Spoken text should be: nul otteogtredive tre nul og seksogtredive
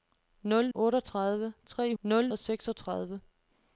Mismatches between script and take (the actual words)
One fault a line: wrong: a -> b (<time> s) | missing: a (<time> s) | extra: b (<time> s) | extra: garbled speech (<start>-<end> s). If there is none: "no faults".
no faults